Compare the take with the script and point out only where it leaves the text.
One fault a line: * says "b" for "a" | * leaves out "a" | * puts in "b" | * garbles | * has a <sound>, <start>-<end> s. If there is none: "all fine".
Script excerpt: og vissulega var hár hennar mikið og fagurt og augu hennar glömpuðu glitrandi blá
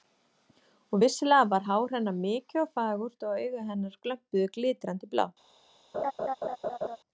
* has a laugh, 5.9-7.0 s